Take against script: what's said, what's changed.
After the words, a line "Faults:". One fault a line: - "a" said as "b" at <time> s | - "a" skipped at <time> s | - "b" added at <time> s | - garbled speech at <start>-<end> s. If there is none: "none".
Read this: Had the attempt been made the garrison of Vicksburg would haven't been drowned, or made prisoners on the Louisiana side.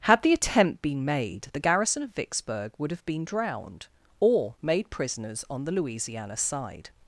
Had the attempt been made the garrison of Vicksburg would have been drowned, or made prisoners on the Louisiana side.
Faults:
- "haven't" said as "have" at 2.9 s